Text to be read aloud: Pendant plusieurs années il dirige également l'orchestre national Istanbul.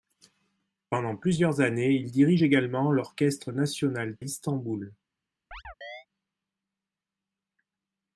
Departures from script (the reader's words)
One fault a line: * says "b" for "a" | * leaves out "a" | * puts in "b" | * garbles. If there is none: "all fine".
all fine